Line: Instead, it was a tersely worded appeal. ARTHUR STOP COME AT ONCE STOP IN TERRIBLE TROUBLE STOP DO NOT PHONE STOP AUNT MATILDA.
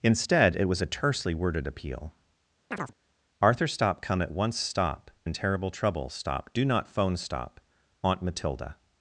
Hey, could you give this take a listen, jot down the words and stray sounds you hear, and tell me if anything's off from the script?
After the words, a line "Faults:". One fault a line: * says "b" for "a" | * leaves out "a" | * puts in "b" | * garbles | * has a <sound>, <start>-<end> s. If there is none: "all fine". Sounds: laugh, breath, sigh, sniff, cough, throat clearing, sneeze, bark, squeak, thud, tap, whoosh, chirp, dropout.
Instead, it was a tersely worded appeal. ARTHUR STOP COME AT ONCE STOP IN TERRIBLE TROUBLE STOP DO NOT PHONE STOP AUNT MATILDA.
Faults:
* has a chirp, 2.7-2.9 s